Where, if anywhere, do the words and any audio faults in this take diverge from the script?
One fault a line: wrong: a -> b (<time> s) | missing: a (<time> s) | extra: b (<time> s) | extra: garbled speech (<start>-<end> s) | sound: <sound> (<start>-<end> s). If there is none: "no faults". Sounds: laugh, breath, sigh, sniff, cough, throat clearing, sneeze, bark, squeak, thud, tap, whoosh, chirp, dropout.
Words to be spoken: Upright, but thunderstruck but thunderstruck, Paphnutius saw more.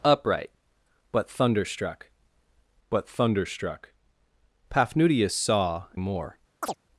sound: chirp (6.6-6.8 s)